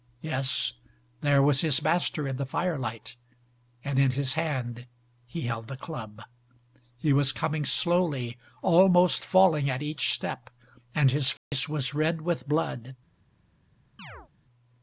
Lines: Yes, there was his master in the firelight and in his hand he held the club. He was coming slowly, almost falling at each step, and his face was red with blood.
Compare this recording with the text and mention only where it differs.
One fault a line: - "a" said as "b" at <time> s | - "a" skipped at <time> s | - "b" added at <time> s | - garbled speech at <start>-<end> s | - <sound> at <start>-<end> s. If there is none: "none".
- dropout at 11.4-11.5 s
- chirp at 14.0-14.3 s